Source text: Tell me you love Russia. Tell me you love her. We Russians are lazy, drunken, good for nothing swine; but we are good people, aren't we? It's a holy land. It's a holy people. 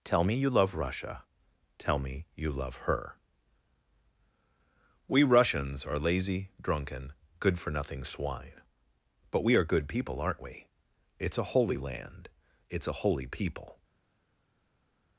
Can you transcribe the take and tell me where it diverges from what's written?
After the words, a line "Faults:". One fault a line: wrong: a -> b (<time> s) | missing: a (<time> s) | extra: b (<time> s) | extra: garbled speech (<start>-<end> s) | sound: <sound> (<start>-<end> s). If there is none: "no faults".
Tell me you love Russia. Tell me you love her. We Russians are lazy, drunken, good for nothing swine; but we are good people, aren't we? It's a holy land. It's a holy people.
Faults:
no faults